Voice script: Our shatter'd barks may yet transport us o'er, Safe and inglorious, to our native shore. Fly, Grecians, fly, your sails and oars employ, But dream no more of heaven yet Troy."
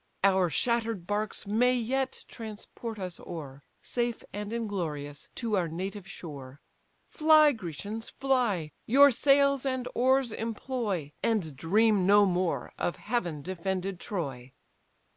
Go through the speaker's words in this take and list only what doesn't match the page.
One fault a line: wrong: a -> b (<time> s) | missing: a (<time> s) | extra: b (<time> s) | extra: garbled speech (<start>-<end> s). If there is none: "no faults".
wrong: But -> And (11.2 s)
wrong: yet -> defended (13.4 s)